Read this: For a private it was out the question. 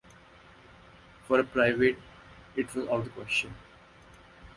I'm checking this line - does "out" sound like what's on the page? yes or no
yes